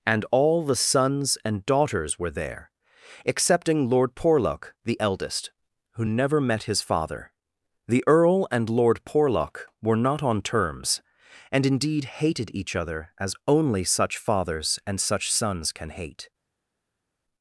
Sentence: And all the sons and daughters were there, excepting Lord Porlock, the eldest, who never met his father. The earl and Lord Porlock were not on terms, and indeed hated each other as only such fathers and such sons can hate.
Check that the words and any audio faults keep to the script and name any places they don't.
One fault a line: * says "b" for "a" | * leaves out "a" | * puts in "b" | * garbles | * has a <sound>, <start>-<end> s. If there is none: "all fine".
all fine